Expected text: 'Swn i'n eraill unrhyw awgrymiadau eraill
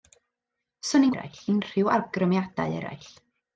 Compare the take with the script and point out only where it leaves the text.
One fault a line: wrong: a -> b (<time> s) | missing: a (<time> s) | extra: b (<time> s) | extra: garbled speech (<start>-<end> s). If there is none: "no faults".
no faults